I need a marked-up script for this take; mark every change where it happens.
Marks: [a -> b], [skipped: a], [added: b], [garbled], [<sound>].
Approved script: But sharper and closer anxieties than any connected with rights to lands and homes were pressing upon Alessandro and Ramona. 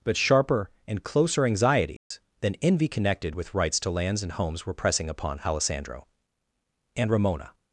But sharper and closer anxieties [dropout] than [any -> envy] connected with rights to lands and homes were pressing upon Alessandro and Ramona.